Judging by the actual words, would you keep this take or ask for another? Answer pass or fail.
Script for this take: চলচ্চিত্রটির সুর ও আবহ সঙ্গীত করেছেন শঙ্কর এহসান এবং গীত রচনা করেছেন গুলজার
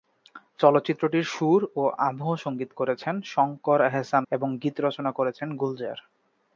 pass